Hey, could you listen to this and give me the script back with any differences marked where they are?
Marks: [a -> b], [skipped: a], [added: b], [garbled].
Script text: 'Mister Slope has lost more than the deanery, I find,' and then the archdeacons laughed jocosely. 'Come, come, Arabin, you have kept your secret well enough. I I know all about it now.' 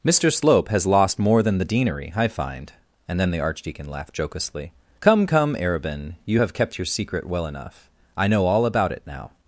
'Mister Slope has lost more than the deanery, I find,' and then the [archdeacons -> archdeacon] laughed jocosely. 'Come, come, Arabin, you have kept your secret well enough. I [skipped: I] know all about it now.'